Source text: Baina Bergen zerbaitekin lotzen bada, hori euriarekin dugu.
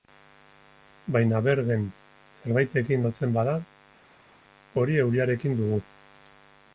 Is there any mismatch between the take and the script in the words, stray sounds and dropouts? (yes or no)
no